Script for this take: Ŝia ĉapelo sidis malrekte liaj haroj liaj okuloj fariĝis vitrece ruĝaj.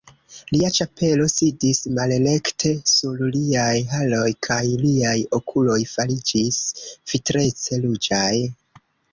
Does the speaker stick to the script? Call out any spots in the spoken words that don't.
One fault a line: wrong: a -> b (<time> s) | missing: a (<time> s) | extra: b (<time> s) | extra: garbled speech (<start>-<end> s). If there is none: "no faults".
wrong: Ŝia -> Lia (0.5 s)
extra: sur (2.9 s)
extra: kaj (4.5 s)